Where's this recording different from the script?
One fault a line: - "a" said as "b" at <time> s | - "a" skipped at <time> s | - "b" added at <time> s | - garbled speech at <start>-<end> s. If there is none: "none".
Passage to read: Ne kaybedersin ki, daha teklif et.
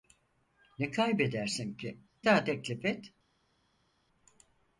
none